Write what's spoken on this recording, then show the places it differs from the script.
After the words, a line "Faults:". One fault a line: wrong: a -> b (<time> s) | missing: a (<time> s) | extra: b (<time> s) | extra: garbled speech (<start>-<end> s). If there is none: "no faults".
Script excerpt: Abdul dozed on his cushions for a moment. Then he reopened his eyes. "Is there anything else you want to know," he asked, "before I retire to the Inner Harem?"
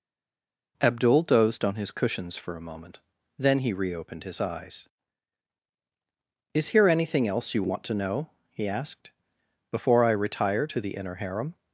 Abdul dozed on his cushions for a moment. Then he reopened his eyes. "Is here anything else you want to know," he asked, "before I retire to the Inner Harem?"
Faults:
wrong: there -> here (6.7 s)